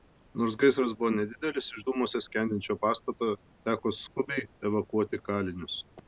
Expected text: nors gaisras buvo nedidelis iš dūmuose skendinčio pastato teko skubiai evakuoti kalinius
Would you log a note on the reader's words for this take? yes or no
no